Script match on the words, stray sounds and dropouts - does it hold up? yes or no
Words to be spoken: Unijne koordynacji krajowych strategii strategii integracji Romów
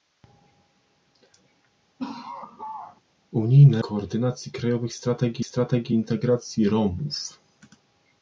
no